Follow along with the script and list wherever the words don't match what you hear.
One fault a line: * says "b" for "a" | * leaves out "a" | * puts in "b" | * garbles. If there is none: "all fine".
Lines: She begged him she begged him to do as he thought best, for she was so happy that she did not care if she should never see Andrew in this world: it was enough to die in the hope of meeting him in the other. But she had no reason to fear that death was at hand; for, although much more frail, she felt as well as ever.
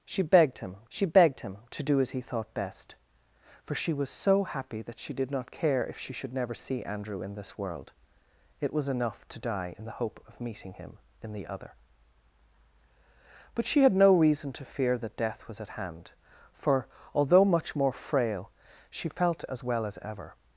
all fine